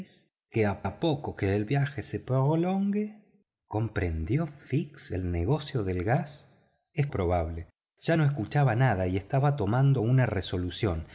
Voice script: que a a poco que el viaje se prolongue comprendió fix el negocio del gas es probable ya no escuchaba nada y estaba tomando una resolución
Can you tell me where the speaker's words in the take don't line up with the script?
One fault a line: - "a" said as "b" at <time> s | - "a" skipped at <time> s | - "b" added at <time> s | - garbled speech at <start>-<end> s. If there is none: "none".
none